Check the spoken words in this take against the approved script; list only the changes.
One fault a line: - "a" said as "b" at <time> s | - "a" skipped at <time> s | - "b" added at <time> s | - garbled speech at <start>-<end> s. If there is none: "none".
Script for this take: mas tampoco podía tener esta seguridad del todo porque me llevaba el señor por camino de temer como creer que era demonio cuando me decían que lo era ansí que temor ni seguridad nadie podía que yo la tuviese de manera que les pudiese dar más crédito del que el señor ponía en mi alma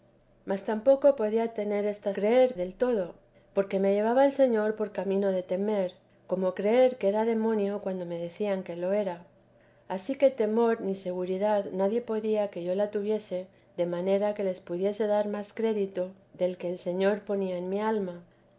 - "seguridad" said as "creer" at 2.1 s